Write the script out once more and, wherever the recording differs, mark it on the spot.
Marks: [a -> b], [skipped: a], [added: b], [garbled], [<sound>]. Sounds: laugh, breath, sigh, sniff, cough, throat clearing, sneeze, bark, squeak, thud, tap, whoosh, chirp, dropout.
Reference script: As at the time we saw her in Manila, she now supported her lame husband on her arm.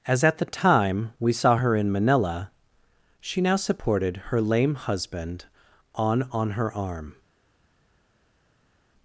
As at the time we saw her in Manila, she now supported her lame husband on [added: on] her arm.